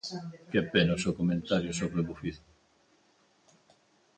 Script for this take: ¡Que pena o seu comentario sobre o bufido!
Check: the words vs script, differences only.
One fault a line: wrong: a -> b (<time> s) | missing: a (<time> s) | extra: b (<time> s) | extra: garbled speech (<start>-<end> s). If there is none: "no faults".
no faults